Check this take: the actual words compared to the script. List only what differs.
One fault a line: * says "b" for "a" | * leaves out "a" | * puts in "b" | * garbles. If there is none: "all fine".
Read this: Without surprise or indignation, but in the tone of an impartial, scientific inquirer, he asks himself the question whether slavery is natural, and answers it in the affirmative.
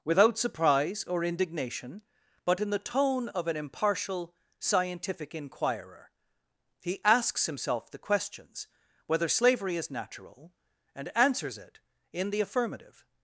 * says "questions" for "question"